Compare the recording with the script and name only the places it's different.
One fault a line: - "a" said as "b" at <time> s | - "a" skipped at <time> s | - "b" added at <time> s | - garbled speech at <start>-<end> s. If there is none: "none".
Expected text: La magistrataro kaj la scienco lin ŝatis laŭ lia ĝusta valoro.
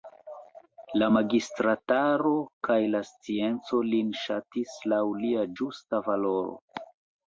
none